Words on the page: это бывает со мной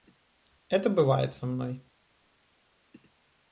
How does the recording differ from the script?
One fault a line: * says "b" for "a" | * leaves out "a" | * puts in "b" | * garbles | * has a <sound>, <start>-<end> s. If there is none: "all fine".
all fine